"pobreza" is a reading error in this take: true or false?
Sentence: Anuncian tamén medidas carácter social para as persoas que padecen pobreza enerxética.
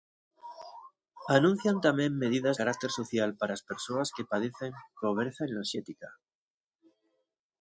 false